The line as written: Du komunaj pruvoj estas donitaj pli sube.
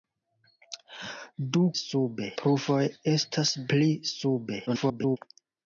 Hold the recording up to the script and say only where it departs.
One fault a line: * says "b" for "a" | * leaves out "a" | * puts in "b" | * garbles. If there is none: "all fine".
* says "sube" for "komunaj"
* leaves out "donitaj"
* garbles